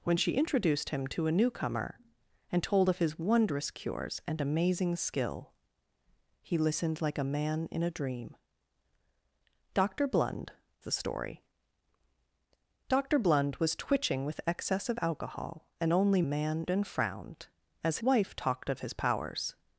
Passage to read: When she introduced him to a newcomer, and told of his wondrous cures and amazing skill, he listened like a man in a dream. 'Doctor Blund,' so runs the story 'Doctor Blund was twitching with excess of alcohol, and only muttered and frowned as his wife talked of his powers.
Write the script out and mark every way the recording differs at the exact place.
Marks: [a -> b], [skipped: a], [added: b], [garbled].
When she introduced him to a newcomer, and told of his wondrous cures and amazing skill, he listened like a man in a dream. 'Doctor Blund,' [skipped: so runs] the story 'Doctor Blund was twitching with excess of alcohol, and only [muttered -> man] and frowned as [skipped: his] wife talked of his powers.